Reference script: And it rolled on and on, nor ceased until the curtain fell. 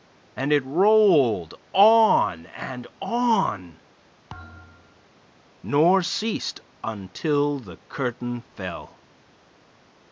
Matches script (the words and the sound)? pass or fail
fail